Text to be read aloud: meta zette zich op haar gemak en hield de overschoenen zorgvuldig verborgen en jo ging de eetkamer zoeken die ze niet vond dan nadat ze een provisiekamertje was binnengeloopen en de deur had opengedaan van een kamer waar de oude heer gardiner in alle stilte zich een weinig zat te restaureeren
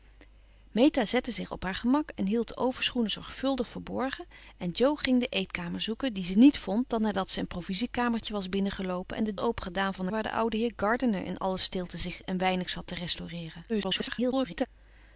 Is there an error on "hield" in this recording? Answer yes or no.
no